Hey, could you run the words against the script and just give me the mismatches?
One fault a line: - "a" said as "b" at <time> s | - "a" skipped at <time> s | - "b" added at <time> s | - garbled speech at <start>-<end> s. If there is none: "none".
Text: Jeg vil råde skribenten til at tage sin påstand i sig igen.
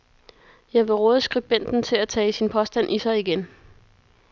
none